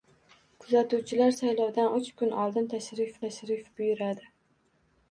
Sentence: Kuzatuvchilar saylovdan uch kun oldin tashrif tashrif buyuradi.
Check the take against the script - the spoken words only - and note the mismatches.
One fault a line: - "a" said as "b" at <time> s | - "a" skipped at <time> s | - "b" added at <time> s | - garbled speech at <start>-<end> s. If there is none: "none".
none